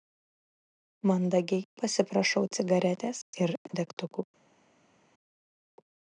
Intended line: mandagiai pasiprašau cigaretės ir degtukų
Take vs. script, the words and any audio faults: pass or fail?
pass